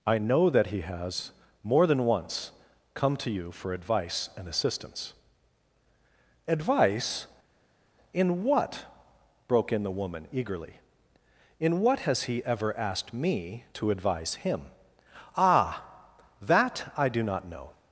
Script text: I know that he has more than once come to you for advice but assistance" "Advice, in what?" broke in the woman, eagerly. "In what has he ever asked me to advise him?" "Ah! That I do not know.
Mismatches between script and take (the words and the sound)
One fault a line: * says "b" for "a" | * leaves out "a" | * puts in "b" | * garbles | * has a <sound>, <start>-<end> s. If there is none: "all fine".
* says "and" for "but"